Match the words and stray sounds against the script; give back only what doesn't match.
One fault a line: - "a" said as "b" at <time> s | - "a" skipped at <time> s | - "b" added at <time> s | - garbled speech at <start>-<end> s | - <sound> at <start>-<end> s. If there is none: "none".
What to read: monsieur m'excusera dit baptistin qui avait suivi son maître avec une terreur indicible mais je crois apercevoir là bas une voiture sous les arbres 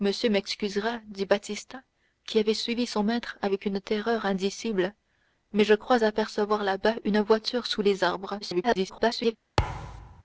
- garbled speech at 8.4-9.4 s
- thud at 9.6-10.2 s